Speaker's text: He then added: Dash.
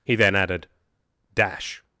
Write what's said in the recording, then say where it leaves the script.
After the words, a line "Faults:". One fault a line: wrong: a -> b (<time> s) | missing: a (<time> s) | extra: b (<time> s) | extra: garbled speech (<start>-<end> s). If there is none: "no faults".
He then added: Dash.
Faults:
no faults